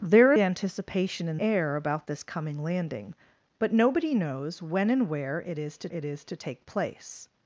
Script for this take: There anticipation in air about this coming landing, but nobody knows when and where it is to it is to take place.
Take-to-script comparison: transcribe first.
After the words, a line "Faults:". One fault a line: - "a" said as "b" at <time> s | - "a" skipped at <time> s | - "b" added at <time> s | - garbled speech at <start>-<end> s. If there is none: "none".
There anticipation in air about this coming landing, but nobody knows when and where it is to it is to take place.
Faults:
none